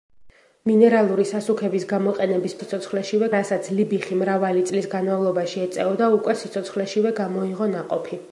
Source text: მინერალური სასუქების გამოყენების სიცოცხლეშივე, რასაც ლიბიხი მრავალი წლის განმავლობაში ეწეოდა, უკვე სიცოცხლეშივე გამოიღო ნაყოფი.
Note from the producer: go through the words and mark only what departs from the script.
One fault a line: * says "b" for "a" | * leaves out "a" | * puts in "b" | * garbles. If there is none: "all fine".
all fine